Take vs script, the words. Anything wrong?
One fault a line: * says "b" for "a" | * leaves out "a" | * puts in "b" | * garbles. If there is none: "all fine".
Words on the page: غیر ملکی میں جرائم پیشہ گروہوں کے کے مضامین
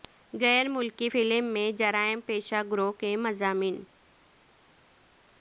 * puts in "فلم"
* leaves out "کے"